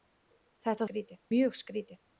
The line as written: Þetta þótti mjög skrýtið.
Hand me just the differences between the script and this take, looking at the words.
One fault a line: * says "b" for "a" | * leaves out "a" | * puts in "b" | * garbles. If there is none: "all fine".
* says "skrýtið" for "þótti"